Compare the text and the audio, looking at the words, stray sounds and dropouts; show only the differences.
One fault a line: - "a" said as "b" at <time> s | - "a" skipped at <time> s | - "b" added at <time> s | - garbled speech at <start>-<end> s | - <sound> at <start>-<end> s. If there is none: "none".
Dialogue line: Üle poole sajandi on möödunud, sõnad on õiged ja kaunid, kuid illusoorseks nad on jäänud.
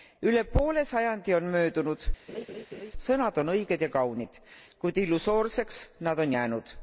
- laugh at 2.3-2.9 s